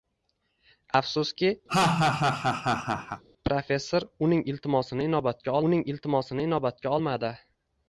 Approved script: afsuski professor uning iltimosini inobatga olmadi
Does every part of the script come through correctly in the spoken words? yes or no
no